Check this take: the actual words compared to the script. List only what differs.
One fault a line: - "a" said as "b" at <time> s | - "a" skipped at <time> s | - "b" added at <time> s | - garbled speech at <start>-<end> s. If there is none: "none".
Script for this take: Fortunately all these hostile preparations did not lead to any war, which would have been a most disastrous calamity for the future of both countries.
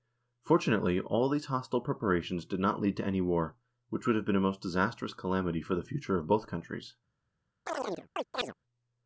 none